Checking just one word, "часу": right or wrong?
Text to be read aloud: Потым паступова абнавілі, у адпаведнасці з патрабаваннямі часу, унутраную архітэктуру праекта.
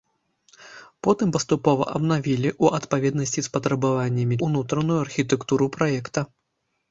wrong